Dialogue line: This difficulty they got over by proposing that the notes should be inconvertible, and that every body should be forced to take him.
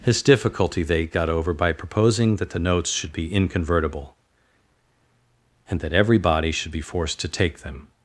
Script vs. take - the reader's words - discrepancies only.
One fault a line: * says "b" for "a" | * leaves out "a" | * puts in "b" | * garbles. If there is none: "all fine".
* says "them" for "him"